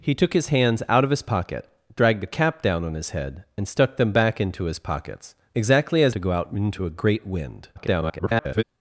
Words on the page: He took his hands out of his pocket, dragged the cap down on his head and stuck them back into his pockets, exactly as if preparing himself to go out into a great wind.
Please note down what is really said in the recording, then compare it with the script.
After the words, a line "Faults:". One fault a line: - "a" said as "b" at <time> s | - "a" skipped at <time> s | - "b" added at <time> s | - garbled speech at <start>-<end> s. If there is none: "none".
He took his hands out of his pocket, dragged the cap down on his head and stuck them back into his pockets, exactly as to go out into a great wind. [garbled]
Faults:
- "if preparing himself" skipped at 6.1 s
- garbled speech at 7.7-8.6 s